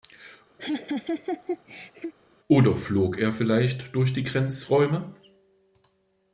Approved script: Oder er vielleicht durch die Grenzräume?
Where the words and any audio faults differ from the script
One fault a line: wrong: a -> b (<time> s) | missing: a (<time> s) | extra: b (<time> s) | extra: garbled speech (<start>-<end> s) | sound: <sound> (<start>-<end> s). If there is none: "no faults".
sound: laugh (0.6-2.1 s)
extra: flog (2.8 s)